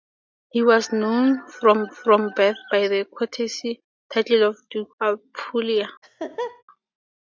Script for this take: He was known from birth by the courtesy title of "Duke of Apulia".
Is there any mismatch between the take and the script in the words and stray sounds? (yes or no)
yes